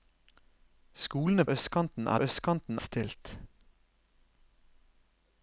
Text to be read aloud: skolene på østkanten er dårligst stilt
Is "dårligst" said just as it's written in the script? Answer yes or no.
no